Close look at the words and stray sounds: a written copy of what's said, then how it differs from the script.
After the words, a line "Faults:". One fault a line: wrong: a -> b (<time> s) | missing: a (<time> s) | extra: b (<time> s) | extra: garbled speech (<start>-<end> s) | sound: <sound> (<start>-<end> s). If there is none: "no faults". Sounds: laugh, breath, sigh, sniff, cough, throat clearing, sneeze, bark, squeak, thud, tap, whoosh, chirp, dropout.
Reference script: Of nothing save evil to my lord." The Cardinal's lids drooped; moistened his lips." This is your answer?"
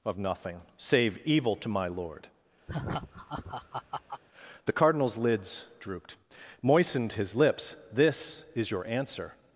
Of nothing save evil to my lord." The Cardinal's lids drooped; moistened his lips." This is your answer?"
Faults:
sound: laugh (2.7-4.2 s)